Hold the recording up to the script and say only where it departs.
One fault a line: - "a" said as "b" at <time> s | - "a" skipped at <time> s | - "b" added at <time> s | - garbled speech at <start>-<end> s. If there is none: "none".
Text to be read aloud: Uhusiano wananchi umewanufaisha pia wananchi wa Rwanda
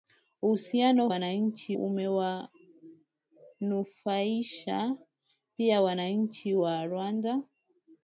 none